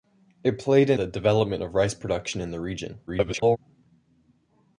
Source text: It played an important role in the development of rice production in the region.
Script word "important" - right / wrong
wrong